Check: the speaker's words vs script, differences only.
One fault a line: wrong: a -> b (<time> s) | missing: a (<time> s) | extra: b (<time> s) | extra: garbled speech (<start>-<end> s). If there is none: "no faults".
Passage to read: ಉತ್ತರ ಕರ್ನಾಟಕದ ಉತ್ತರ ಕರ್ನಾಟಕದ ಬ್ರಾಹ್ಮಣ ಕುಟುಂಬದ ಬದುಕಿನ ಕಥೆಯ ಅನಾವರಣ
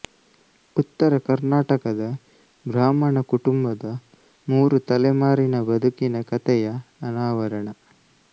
wrong: ಉತ್ತರ ಕರ್ನಾಟಕದ ಬ್ರಾಹ್ಮಣ ಕುಟುಂಬದ -> ಬ್ರಾಹ್ಮಣ ಕುಟುಂಬದ ಮೂರು ತಲೆಮಾರಿನ (2.6 s)